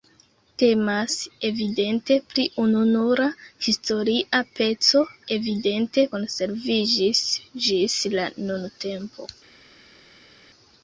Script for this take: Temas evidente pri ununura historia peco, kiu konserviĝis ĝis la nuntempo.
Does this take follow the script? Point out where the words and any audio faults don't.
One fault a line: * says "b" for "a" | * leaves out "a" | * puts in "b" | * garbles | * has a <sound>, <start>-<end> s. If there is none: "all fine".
* says "evidente" for "kiu"